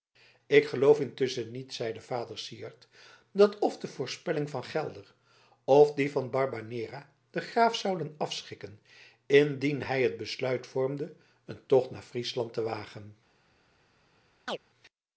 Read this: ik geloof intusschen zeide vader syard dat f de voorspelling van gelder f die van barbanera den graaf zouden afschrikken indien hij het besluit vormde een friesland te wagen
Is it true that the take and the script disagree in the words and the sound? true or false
true